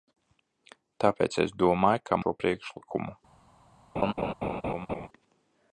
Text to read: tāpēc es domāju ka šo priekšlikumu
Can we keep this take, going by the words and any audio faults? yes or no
no